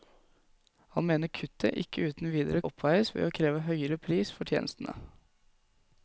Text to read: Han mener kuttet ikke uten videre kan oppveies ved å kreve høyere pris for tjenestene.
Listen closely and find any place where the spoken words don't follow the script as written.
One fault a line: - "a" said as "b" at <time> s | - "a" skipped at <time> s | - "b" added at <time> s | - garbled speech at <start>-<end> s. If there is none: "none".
- "kan" skipped at 2.6 s